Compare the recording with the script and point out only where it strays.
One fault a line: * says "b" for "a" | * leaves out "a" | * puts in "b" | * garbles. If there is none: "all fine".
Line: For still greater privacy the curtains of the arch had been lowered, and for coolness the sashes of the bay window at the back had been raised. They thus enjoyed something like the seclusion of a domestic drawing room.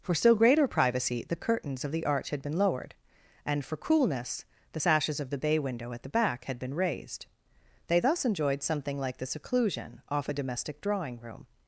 * says "off" for "of"